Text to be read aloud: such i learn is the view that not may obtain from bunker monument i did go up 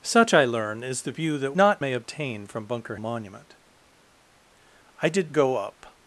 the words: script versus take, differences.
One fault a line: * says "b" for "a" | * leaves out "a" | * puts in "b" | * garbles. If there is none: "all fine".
all fine